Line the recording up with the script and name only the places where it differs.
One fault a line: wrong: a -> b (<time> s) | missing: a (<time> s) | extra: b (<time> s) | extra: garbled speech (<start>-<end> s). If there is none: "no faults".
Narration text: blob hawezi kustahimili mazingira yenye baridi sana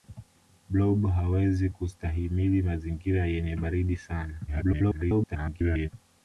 extra: garbled speech (4.5-5.9 s)